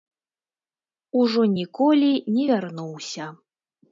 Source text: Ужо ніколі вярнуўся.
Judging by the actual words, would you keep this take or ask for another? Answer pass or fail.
fail